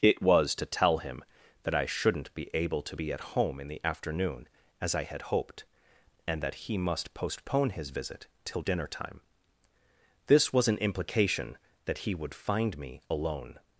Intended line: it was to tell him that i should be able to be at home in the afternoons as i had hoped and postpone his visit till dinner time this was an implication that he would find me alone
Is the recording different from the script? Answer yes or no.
yes